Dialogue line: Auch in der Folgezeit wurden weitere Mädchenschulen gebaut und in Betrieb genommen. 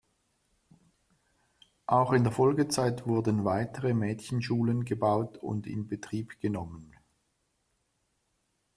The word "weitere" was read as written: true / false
true